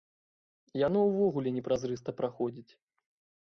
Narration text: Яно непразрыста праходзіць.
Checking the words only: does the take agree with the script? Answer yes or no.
no